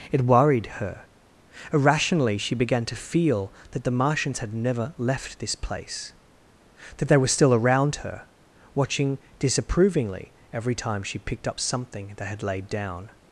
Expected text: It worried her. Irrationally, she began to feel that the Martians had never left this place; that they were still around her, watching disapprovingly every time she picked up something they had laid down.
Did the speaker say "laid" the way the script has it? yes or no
yes